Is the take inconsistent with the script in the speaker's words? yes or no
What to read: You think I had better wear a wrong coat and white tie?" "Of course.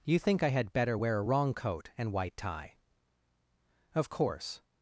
no